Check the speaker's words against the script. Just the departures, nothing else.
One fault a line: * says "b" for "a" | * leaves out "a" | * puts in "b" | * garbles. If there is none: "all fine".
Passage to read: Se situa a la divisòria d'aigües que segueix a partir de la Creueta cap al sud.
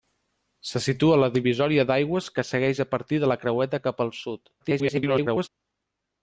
* garbles